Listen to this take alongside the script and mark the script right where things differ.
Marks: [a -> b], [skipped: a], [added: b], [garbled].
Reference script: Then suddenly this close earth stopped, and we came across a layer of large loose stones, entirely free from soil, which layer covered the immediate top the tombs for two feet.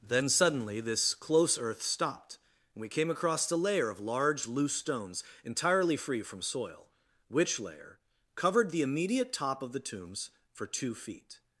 Then suddenly this close earth stopped, and we came across a layer of large loose stones, entirely free from soil, which layer covered the immediate top [added: of] the tombs for two feet.